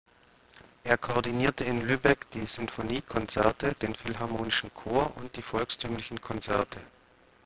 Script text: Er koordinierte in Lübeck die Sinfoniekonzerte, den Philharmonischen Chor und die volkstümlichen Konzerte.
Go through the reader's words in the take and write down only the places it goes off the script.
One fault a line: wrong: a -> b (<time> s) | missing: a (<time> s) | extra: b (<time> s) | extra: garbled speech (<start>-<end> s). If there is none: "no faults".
no faults